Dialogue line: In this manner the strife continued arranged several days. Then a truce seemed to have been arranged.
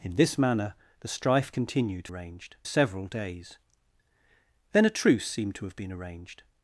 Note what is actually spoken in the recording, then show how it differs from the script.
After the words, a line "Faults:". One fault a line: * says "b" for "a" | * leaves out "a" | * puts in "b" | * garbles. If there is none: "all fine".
In this manner the strife continued arranged several days. Then a truce seemed to have been arranged.
Faults:
all fine